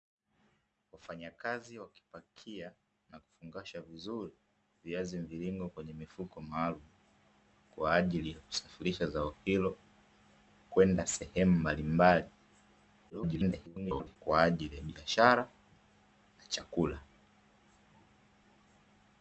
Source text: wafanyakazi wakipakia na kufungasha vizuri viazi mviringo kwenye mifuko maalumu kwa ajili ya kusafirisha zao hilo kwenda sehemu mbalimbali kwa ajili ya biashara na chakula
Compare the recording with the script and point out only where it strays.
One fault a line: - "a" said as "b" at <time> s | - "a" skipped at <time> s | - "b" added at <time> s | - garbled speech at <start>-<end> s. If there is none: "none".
- garbled speech at 13.1-14.2 s